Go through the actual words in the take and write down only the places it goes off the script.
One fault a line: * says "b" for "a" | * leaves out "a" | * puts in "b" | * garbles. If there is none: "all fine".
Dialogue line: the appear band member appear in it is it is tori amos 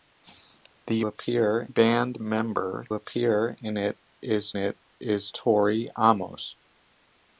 all fine